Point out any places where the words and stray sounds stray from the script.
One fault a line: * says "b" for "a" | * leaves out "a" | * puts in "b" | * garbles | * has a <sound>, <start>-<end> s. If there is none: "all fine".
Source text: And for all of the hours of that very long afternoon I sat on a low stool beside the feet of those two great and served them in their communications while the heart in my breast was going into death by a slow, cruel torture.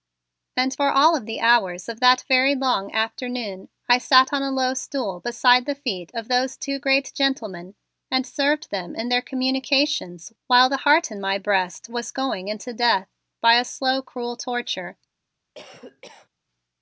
* puts in "gentlemen"
* has a cough, 15.6-16.3 s